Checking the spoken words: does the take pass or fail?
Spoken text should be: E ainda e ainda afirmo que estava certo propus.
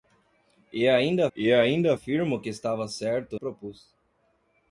pass